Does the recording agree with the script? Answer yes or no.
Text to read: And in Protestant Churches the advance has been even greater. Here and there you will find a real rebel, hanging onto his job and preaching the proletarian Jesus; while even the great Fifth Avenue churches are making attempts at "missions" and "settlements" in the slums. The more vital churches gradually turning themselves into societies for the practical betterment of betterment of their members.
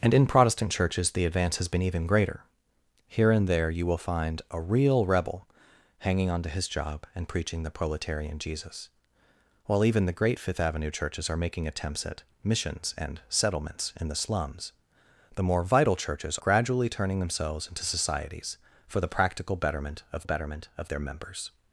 yes